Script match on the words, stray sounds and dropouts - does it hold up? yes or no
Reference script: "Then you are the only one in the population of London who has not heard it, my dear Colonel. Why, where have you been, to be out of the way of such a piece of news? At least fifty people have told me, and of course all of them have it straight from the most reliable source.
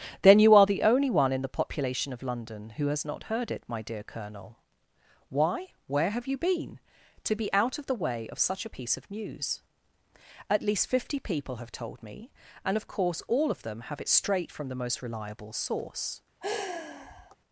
no